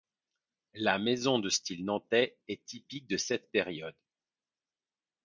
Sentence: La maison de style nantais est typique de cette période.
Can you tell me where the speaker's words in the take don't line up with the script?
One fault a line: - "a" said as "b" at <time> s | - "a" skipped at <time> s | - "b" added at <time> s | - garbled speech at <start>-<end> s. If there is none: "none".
none